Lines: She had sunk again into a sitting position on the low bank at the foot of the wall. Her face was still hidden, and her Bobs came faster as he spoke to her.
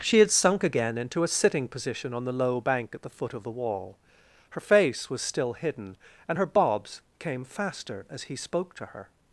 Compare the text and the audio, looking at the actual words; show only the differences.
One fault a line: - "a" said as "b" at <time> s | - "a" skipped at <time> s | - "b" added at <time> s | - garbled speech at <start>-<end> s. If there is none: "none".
none